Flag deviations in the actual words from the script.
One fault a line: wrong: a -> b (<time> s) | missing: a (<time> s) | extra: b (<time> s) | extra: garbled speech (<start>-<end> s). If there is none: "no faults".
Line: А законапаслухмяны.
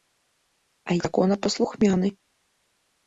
no faults